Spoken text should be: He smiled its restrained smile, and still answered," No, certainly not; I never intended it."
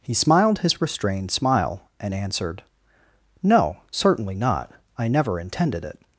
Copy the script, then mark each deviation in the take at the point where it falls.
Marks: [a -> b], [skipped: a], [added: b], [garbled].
He smiled [its -> his] restrained smile, and [skipped: still] answered," No, certainly not; I never intended it."